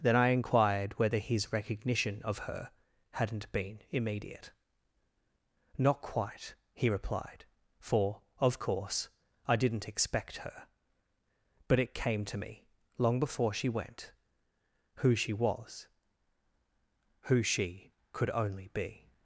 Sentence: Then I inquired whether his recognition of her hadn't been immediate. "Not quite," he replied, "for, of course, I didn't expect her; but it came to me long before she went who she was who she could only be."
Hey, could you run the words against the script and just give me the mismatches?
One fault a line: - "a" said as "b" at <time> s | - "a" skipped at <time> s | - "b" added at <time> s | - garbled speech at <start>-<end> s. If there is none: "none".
none